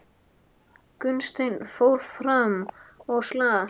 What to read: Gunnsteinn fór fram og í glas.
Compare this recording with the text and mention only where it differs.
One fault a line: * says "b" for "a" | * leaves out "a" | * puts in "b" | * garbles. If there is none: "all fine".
all fine